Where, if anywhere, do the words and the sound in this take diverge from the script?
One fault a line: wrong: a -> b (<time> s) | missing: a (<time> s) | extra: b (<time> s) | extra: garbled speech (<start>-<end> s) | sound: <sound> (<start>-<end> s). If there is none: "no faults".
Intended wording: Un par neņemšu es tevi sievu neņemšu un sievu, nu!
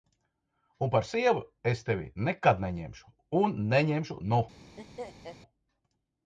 wrong: neņemšu -> sievu (1.1 s)
wrong: sievu -> nekad (2.3 s)
wrong: sievu -> neņemšu (3.8 s)
sound: laugh (4.8-5.4 s)